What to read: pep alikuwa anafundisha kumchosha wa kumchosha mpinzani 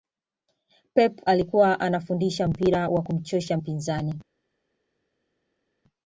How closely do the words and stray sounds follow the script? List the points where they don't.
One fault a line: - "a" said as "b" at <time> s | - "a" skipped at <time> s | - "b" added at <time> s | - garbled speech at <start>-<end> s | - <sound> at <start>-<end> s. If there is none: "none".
- "kumchosha" said as "mpira" at 2.5 s